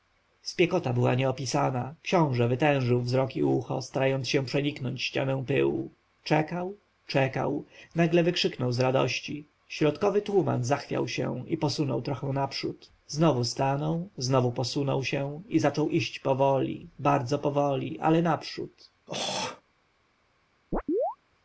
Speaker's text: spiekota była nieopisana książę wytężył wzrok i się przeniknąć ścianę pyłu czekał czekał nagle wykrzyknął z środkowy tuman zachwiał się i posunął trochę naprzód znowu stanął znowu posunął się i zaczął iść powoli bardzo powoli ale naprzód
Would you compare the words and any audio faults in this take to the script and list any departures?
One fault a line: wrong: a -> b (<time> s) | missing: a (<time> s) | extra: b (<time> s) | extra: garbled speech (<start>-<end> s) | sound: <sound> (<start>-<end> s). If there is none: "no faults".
extra: ucho starając (3.4 s)
extra: radości (8.8 s)
sound: throat clearing (19.1-19.6 s)
sound: chirp (20.7-21.2 s)